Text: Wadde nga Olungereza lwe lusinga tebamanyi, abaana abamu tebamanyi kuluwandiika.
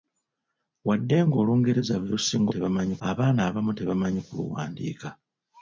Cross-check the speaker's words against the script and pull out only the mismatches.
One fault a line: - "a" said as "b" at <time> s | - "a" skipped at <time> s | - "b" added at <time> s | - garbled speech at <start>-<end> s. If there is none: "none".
none